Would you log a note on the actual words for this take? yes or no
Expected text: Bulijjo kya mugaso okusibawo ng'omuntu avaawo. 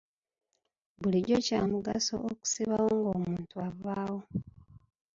no